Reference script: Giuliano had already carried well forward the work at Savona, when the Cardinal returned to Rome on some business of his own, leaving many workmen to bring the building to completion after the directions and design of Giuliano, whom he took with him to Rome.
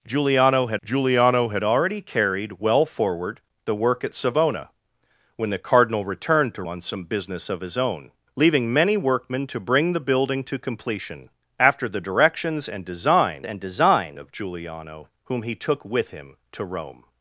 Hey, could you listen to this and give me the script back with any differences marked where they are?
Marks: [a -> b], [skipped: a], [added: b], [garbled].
Giuliano had [added: giuliano had] already carried well forward the work at Savona, when the Cardinal returned to [skipped: Rome] on some business of his own, leaving many workmen to bring the building to completion after the directions and design [added: and design] of Giuliano, whom he took with him to Rome.